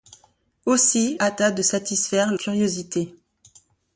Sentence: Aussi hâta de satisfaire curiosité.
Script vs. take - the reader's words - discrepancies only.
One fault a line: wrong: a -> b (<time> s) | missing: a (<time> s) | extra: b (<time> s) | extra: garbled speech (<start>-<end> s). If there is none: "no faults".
no faults